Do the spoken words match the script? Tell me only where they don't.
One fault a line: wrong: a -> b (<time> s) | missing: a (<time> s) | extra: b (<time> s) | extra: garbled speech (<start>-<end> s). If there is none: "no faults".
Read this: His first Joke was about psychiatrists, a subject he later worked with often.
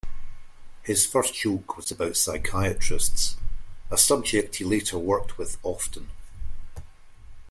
no faults